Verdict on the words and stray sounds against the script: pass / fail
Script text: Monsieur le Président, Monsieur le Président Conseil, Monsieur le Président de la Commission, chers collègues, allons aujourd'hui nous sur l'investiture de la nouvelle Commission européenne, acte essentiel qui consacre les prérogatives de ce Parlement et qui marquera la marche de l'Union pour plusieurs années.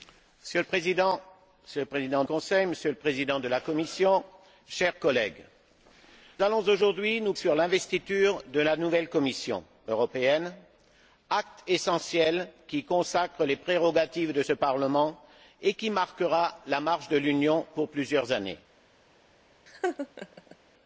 fail